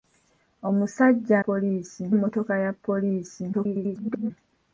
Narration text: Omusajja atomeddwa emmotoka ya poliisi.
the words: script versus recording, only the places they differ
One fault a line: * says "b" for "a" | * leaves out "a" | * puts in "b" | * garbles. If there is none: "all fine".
* says "poliisi" for "atomeddwa"
* garbles